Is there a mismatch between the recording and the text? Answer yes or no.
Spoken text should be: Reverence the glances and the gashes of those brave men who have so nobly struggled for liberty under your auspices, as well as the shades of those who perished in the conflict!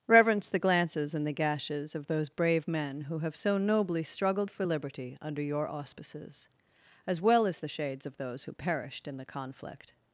no